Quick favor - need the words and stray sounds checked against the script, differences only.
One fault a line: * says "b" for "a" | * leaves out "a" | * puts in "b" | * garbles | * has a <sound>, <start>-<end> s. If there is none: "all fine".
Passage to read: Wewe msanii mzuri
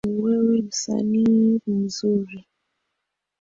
all fine